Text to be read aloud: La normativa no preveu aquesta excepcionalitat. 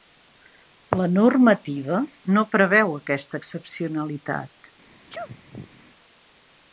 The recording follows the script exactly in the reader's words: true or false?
true